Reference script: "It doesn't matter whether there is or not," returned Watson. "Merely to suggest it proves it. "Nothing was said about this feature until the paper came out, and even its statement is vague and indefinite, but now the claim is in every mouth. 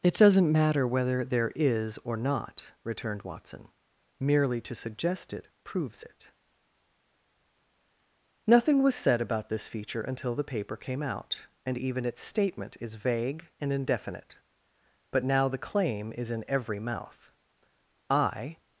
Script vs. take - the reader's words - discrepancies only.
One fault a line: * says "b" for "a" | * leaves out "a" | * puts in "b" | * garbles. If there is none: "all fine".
* puts in "I"